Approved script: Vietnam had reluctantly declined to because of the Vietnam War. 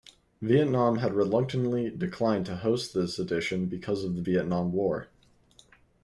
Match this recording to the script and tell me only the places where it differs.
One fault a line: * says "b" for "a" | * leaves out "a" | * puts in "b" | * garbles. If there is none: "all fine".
* puts in "host this edition"